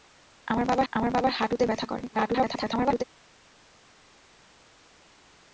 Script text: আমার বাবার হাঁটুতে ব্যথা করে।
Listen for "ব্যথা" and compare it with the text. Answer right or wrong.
right